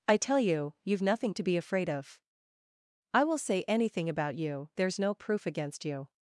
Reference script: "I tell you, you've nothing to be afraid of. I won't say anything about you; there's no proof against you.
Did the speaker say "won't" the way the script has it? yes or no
no